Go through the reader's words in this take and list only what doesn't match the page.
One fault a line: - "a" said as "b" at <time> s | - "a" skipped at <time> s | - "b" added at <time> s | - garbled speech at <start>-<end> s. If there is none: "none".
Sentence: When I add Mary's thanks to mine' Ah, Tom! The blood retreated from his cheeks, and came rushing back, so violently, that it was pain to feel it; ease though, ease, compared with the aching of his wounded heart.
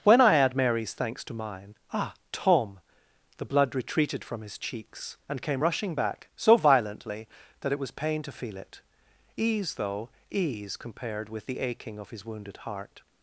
none